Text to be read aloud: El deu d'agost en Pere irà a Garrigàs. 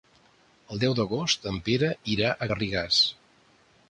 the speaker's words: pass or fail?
pass